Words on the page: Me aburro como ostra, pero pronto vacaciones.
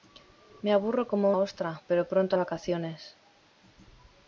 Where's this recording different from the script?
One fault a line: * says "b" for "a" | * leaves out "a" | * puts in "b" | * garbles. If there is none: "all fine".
all fine